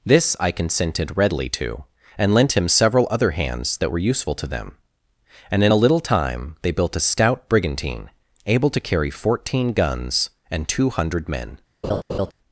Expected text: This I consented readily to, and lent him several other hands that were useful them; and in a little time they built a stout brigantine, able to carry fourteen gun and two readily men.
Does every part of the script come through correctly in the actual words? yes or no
no